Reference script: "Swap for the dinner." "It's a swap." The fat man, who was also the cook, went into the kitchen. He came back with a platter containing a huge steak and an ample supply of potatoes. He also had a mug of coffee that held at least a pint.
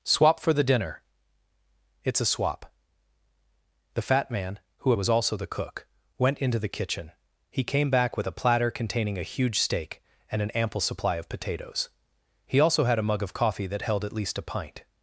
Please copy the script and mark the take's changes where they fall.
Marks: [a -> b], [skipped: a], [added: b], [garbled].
"Swap for the dinner." "It's a swap." The fat man, who was also the cook, went into the kitchen. He came back with a platter containing a huge steak and an ample supply of potatoes. He also had a mug of coffee that held at least a pint.